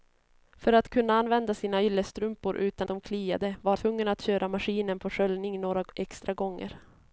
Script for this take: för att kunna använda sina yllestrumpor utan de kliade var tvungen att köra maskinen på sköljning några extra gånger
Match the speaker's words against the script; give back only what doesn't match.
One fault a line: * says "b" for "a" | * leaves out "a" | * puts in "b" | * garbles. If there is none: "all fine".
all fine